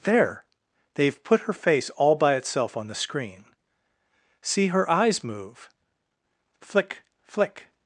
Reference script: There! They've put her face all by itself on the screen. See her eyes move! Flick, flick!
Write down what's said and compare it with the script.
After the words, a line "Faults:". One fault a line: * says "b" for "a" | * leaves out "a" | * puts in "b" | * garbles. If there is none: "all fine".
There! They've put her face all by itself on the screen. See her eyes move! Flick, flick!
Faults:
all fine